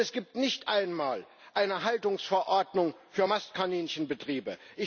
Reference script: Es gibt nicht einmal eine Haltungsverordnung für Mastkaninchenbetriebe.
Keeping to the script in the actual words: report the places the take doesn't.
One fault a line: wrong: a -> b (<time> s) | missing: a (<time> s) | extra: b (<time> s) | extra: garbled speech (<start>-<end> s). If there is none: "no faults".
no faults